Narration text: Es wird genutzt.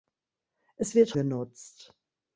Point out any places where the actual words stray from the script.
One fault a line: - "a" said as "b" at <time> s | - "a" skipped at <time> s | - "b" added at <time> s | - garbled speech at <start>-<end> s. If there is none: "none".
none